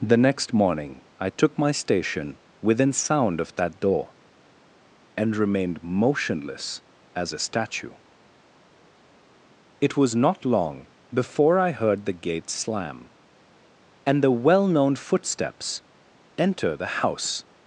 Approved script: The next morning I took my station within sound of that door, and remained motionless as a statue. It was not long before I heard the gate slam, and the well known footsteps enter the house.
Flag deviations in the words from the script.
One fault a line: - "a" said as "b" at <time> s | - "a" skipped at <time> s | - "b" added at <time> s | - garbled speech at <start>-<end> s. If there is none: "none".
none